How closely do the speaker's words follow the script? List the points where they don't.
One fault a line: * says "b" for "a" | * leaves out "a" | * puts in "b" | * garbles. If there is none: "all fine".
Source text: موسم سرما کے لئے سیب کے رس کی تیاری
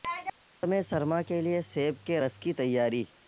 all fine